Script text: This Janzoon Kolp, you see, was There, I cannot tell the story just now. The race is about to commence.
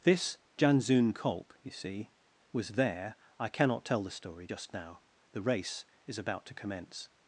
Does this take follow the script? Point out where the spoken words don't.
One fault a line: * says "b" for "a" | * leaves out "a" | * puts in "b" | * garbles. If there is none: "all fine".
all fine